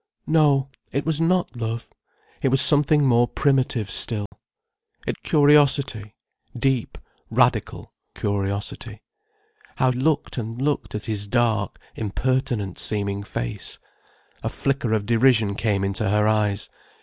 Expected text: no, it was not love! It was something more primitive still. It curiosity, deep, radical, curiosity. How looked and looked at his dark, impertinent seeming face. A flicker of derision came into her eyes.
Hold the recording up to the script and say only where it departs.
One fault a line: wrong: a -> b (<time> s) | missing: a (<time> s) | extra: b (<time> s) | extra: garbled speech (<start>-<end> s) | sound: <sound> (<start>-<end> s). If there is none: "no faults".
sound: dropout (4.3-4.3 s)